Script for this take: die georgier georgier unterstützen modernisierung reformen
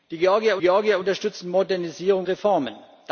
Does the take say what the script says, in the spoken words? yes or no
yes